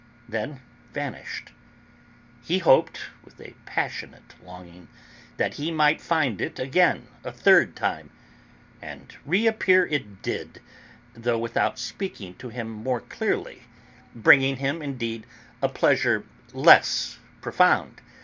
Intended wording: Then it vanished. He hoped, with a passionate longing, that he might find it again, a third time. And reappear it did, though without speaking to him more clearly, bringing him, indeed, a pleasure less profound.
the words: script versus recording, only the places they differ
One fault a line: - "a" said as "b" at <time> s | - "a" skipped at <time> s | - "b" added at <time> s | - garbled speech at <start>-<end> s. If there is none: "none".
- "it" skipped at 0.6 s